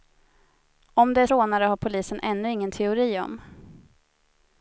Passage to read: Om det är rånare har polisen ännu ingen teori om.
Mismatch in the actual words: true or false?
false